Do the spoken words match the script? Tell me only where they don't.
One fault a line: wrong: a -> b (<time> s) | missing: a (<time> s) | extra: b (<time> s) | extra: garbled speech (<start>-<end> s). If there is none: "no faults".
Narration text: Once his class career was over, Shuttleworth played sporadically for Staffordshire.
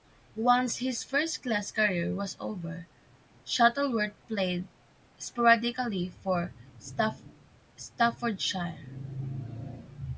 extra: first (1.0 s)